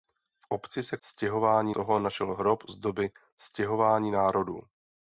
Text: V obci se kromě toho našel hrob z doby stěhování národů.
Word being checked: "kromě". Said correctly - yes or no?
no